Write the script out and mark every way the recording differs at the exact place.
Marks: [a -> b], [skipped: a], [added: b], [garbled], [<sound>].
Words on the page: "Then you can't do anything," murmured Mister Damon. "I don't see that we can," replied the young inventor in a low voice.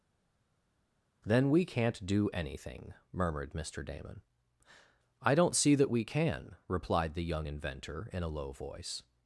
"Then [you -> we] can't do anything," murmured Mister Damon. "I don't see that we can," replied the young inventor in a low voice.